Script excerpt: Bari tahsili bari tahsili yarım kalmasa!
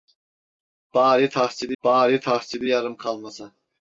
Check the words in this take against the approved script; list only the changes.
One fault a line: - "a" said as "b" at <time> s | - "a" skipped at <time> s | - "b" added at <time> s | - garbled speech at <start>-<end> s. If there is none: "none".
none